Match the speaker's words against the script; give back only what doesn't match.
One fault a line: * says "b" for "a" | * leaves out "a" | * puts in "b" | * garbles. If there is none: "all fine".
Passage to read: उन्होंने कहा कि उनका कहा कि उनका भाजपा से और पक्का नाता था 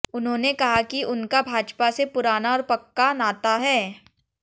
* leaves out "कहा कि उनका"
* puts in "पुराना"
* says "है" for "था"